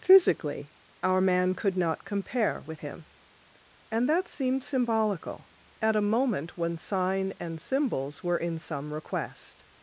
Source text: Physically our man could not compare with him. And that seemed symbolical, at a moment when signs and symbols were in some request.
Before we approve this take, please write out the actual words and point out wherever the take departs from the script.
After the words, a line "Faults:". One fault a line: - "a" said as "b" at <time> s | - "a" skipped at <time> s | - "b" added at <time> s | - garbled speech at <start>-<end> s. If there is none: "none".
Physically our man could not compare with him. And that seemed symbolical, at a moment when sign and symbols were in some request.
Faults:
- "signs" said as "sign" at 6.8 s